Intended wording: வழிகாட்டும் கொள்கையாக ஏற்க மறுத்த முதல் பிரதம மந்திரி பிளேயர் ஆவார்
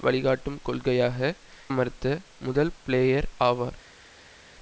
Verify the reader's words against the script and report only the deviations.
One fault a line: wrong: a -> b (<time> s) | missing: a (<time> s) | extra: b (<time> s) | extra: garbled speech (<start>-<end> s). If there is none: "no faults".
missing: ஏற்க (1.2 s)
missing: பிரதம மந்திரி (2.7 s)